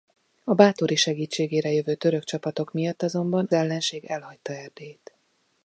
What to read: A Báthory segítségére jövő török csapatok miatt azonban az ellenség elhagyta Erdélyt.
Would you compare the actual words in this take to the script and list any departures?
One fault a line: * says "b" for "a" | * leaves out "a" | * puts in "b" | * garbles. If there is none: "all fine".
* leaves out "az"